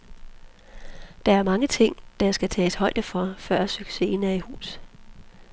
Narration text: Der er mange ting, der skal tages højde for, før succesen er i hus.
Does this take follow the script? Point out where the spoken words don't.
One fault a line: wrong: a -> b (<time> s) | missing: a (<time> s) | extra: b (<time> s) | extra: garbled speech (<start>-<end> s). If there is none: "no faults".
no faults